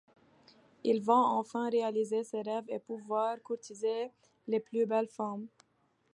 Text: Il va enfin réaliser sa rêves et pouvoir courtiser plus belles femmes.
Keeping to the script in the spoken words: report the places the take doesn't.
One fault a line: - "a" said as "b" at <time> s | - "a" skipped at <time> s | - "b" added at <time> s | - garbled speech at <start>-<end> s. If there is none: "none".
- "sa" said as "ses" at 2.2 s
- "les" added at 4.5 s